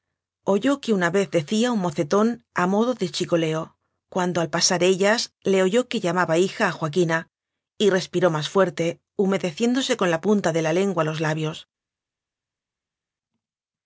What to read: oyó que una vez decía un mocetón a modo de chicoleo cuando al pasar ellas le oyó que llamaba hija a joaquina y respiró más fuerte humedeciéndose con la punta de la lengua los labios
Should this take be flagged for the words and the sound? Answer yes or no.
no